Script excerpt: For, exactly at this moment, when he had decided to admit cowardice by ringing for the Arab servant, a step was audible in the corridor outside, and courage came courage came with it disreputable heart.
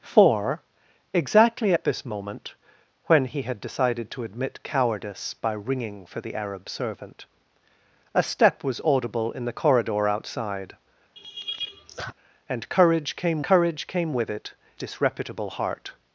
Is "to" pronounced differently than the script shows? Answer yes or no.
no